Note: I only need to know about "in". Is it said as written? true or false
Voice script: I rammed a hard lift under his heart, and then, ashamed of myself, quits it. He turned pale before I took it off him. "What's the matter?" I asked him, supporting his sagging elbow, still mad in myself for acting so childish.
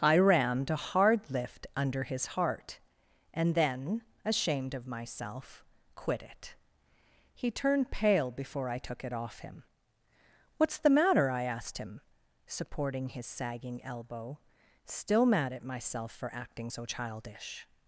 false